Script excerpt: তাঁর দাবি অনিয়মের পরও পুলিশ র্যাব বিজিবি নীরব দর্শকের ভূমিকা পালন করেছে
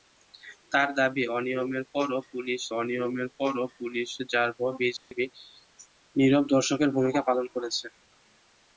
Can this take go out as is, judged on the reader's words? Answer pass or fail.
fail